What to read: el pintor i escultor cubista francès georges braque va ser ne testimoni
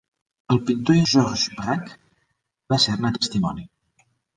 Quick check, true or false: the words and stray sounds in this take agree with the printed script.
false